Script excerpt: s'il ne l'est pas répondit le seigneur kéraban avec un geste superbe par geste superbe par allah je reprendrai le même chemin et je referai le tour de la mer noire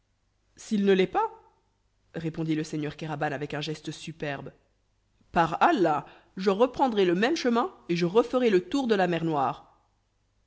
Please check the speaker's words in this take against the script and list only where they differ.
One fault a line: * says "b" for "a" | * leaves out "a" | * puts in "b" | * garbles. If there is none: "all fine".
* leaves out "geste superbe par"